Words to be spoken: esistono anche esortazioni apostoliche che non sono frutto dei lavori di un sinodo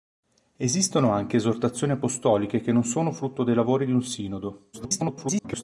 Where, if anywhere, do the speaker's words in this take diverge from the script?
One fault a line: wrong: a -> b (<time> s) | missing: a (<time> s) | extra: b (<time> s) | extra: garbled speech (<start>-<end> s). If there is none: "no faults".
extra: garbled speech (4.7-5.6 s)